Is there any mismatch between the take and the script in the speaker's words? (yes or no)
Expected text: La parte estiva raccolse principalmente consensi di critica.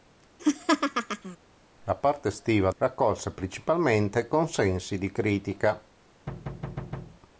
no